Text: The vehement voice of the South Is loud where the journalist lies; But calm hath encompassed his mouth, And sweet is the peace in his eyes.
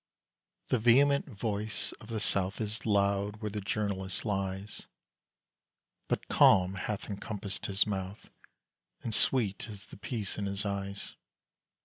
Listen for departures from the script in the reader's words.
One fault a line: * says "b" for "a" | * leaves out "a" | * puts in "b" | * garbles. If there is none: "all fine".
all fine